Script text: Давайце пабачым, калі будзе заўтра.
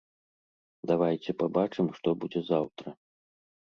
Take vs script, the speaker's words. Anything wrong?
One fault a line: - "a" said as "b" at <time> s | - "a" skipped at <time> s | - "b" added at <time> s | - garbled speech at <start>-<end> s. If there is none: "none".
- "калі" said as "што" at 2.0 s